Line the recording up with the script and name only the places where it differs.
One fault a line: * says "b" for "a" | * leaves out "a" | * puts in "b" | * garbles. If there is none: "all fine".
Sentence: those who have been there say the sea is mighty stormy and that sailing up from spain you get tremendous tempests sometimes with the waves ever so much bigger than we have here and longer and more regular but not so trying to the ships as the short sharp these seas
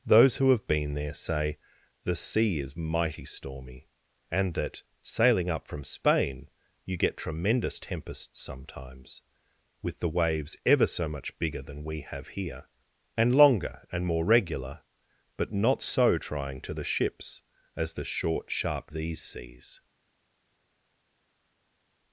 all fine